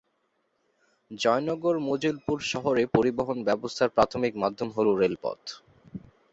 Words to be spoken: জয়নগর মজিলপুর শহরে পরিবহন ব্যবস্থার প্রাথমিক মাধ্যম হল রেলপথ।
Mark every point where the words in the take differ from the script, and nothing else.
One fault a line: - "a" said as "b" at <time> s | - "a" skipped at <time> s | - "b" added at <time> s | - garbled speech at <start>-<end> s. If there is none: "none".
none